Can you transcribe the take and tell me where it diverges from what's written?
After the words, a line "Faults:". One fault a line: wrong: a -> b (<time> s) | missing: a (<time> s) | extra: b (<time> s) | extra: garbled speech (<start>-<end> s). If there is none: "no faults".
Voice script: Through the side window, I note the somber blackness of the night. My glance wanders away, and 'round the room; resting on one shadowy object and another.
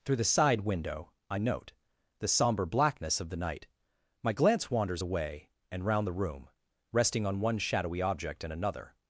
Through the side window, I note the somber blackness of the night. My glance wanders away, and 'round the room; resting on one shadowy object and another.
Faults:
no faults